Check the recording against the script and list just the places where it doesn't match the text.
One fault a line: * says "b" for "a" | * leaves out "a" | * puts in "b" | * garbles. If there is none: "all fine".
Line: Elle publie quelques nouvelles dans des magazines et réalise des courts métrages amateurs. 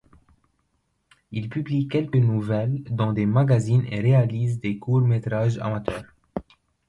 * says "Il" for "Elle"